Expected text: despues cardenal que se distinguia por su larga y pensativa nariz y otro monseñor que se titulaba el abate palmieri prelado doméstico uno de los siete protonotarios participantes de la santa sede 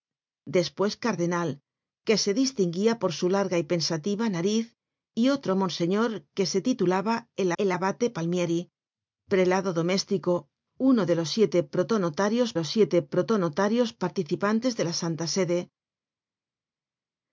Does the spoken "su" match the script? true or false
true